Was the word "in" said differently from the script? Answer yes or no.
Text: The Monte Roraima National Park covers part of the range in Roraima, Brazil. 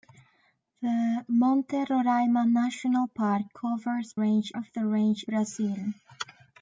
yes